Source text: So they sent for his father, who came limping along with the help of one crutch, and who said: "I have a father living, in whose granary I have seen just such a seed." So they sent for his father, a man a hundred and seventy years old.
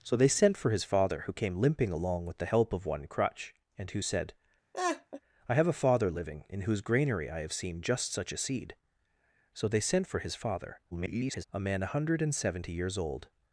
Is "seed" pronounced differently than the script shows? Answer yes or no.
no